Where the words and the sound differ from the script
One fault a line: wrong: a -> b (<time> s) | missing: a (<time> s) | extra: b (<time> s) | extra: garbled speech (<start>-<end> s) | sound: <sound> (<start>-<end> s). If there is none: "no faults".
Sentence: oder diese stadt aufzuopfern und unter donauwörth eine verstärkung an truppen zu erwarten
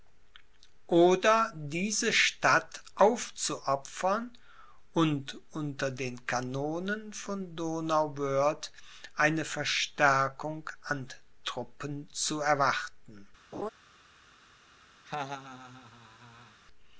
extra: den kanonen von (5.9 s)
sound: laugh (13.5-13.7 s)
sound: laugh (15.0-16.6 s)